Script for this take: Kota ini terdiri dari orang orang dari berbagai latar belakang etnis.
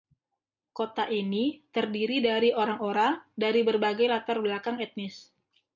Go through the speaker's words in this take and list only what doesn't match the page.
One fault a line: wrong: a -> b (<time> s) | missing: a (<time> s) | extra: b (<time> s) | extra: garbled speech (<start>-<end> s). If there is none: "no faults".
no faults